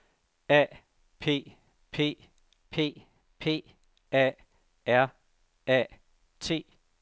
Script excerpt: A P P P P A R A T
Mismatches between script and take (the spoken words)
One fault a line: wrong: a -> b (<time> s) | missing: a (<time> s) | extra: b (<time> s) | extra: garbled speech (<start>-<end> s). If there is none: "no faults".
no faults